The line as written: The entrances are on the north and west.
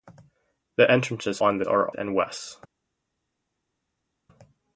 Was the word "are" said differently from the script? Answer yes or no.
yes